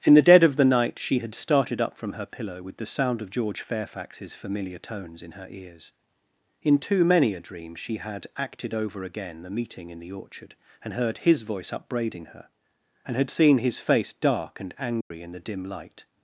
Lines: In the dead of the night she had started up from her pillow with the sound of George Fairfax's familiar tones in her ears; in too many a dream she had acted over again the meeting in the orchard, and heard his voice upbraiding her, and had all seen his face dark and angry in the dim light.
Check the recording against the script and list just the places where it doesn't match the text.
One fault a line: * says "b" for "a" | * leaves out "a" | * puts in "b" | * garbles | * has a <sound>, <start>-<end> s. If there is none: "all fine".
* leaves out "all"
* has a dropout, 15.0-15.1 s